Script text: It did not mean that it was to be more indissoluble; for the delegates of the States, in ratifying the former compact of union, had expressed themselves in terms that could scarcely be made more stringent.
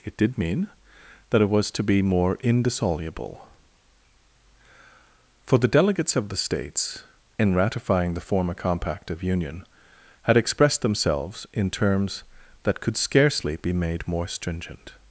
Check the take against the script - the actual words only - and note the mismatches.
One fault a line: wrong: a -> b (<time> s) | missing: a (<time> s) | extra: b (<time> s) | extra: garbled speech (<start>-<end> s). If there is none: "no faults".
missing: not (0.4 s)